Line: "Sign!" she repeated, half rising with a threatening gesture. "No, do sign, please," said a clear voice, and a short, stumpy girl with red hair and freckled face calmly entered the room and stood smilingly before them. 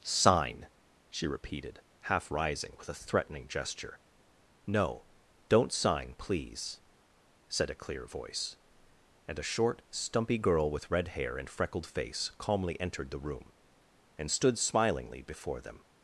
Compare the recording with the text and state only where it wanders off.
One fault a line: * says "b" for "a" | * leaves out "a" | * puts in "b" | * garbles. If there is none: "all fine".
* says "don't" for "do"